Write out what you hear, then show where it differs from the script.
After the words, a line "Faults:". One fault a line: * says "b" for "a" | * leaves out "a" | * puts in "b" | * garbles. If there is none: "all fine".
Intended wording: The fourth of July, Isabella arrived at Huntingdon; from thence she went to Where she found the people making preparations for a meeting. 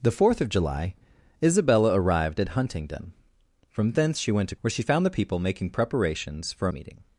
The fourth of July, Isabella arrived at Huntingdon; from thence she went to Where she found the people making preparations for a meeting.
Faults:
all fine